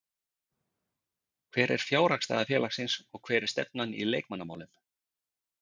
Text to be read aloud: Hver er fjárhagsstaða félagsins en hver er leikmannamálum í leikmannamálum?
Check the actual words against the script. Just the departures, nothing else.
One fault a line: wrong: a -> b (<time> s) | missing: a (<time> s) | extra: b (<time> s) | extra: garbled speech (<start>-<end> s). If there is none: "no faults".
wrong: en -> og (3.1 s)
wrong: leikmannamálum -> stefnan (3.6 s)